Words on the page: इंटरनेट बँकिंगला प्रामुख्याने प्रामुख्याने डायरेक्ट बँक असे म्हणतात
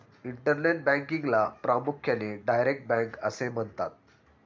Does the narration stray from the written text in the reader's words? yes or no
yes